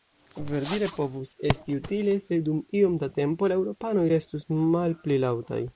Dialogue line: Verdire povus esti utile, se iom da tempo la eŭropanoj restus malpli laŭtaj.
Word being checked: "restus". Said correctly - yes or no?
yes